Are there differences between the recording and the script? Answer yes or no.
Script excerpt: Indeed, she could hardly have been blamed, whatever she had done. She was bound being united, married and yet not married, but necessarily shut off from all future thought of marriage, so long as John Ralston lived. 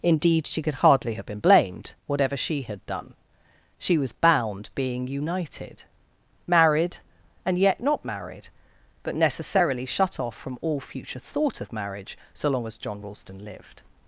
no